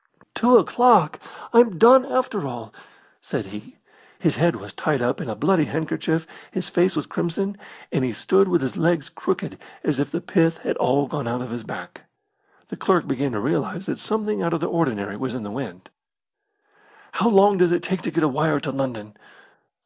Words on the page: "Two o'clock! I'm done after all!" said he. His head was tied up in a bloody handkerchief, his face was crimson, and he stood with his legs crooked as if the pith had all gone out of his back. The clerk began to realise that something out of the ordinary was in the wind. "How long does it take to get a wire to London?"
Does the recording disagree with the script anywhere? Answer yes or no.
no